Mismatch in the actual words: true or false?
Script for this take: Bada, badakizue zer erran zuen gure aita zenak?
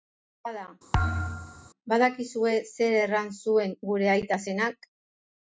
false